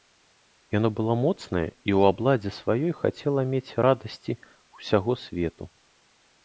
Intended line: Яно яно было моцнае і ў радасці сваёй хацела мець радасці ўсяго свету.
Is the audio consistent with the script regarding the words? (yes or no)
no